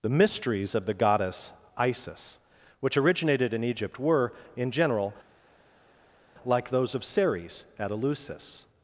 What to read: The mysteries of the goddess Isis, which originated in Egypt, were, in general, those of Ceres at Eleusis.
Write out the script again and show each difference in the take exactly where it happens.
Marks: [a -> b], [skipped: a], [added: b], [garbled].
The mysteries of the goddess Isis, which originated in Egypt, were, in general, [added: like] those of Ceres at Eleusis.